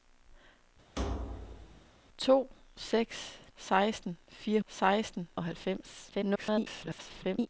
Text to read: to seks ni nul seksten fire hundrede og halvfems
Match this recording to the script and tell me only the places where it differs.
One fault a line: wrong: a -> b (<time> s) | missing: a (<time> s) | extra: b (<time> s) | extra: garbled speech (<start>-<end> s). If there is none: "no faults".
missing: ni nul (3.4 s)
wrong: hundrede -> seksten (4.7 s)
extra: garbled speech (6.1-7.5 s)